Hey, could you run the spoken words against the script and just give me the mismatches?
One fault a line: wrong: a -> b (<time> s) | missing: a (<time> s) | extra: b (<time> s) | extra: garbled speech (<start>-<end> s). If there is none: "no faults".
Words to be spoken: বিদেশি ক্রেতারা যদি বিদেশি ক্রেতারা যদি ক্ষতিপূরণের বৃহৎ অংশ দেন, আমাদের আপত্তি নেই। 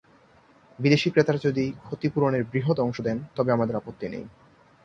missing: বিদেশি ক্রেতারা যদি (1.6 s)
extra: তবে (3.4 s)